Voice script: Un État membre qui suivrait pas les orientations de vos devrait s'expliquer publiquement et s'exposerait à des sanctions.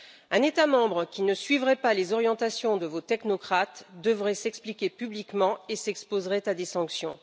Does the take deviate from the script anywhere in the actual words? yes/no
yes